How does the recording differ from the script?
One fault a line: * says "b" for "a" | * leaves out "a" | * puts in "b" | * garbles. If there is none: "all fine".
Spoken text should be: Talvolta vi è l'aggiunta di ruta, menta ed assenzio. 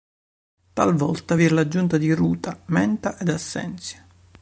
all fine